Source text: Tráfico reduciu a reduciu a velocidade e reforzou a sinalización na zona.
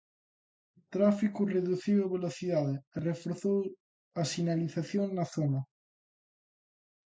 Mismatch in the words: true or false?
true